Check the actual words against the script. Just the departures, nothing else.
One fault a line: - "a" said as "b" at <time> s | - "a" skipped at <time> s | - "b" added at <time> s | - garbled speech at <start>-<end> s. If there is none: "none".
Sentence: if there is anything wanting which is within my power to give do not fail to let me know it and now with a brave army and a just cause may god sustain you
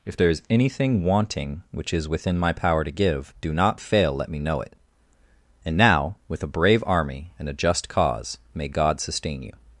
- "to" skipped at 4.1 s